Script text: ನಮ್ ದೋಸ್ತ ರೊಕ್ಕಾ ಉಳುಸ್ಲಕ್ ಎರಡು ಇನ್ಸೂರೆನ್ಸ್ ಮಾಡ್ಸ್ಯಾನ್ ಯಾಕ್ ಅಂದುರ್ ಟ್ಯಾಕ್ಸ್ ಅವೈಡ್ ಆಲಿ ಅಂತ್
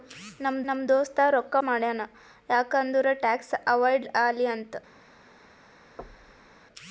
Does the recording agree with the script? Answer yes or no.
no